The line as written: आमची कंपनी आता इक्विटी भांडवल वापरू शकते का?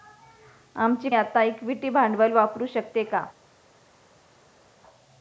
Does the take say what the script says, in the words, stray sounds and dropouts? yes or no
no